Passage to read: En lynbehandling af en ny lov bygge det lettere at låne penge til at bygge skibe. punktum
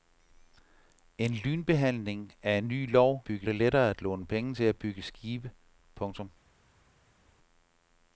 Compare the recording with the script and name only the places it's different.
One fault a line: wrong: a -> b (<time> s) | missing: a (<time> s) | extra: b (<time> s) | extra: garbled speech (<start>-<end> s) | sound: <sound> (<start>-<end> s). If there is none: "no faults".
no faults